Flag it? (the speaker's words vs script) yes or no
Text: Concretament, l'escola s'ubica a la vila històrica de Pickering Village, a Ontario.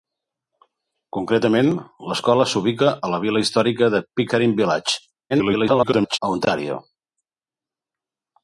yes